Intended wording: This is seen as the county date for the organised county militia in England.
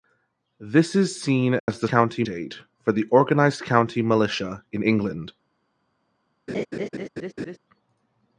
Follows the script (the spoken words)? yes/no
yes